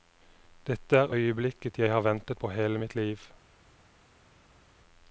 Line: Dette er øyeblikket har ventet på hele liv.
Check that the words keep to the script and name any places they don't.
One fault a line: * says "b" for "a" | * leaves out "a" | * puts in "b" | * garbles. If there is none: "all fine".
* puts in "jeg"
* puts in "mitt"